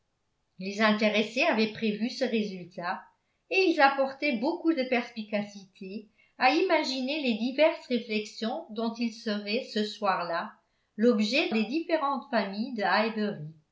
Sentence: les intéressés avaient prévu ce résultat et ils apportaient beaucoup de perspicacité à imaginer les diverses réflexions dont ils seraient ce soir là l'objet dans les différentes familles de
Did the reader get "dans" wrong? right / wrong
wrong